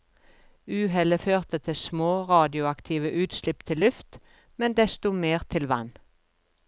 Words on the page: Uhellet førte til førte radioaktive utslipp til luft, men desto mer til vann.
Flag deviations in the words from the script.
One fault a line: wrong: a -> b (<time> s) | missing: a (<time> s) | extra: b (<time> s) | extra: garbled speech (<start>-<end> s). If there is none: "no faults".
wrong: førte -> små (1.7 s)